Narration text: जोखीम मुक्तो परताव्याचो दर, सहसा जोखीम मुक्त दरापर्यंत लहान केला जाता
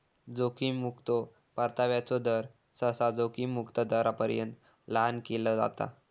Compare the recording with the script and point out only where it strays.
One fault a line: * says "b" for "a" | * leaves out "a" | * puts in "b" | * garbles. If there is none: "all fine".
all fine